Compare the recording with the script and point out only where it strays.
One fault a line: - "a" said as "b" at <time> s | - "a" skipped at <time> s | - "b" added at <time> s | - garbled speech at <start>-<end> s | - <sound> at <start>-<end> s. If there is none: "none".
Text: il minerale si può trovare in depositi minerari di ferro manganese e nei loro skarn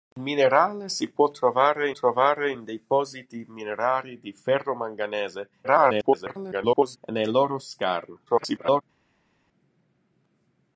- "trovare" added at 1.9 s
- garbled speech at 5.6-7.0 s
- garbled speech at 8.3-8.8 s